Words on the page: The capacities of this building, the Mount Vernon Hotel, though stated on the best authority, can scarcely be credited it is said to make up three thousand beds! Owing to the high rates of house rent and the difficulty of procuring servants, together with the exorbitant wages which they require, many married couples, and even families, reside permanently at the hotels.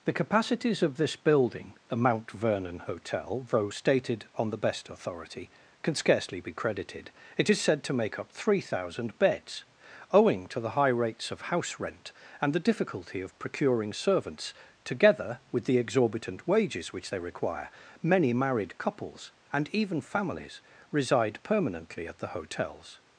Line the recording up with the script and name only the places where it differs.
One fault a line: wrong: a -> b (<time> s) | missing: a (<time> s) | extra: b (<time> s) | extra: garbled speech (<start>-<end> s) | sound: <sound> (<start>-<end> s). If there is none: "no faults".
no faults